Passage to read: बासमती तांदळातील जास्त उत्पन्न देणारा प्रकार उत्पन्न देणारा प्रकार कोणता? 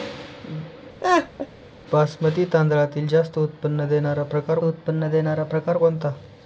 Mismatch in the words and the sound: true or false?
true